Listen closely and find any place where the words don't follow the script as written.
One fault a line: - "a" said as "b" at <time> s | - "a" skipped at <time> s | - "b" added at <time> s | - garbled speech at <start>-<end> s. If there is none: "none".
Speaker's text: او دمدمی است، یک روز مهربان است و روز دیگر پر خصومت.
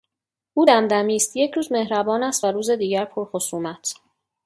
none